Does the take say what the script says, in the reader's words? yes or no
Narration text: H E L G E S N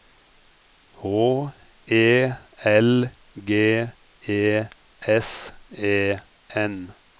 no